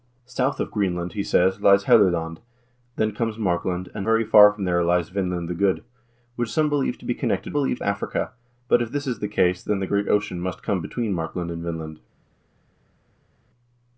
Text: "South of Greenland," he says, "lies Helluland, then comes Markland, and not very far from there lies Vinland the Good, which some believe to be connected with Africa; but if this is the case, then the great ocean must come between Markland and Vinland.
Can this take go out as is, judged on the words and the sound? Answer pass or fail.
fail